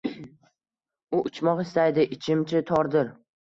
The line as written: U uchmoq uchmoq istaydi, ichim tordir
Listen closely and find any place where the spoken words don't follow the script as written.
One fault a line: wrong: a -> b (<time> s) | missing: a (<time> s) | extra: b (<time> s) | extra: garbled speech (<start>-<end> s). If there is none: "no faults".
missing: uchmoq (1.6 s)
extra: chi (2.5 s)